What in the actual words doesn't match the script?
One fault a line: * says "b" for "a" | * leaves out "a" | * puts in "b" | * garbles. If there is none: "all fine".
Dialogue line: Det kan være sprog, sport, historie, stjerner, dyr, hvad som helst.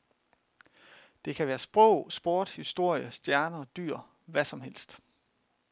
all fine